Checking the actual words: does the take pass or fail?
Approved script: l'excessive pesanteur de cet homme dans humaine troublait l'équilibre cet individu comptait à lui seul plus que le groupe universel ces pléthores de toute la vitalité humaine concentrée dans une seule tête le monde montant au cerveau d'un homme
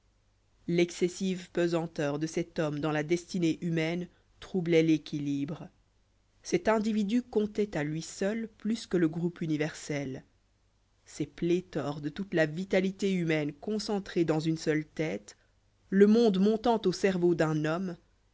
fail